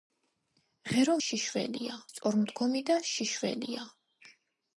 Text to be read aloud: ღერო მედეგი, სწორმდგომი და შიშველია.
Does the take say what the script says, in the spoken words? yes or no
no